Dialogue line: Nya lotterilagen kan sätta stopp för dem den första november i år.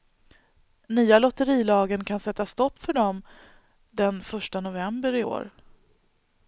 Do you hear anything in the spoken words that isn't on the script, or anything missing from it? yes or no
no